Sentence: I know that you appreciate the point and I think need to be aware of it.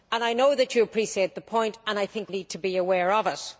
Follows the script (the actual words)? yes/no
yes